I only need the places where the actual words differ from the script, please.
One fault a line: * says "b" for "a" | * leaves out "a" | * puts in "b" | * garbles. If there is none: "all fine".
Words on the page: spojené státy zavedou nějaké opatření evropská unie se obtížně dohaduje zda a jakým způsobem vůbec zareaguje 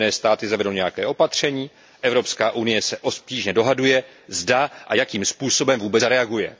all fine